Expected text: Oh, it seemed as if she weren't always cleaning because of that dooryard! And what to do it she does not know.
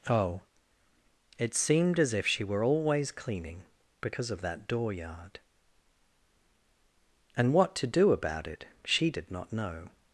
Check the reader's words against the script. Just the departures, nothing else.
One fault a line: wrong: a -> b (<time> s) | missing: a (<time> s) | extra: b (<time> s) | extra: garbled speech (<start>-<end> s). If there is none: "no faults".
wrong: weren't -> were (2.4 s)
extra: about (8.1 s)
wrong: does -> did (9.1 s)